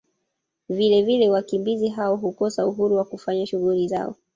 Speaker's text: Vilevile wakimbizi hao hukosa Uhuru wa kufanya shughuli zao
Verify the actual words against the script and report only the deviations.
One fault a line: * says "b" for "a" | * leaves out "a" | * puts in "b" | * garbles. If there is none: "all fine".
all fine